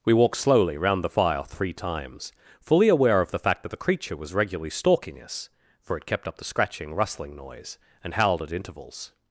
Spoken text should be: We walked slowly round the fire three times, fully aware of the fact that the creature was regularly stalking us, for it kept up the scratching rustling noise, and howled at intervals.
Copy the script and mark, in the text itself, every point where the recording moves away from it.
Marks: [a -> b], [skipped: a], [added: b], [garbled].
We walked slowly round the fire three times, fully aware of the fact that the creature was regularly stalking us, for it kept up the scratching rustling noise, and howled at intervals.